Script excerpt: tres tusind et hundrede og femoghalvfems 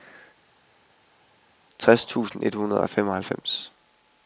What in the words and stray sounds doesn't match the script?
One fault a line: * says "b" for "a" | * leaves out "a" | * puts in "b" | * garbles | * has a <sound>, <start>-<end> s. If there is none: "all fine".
all fine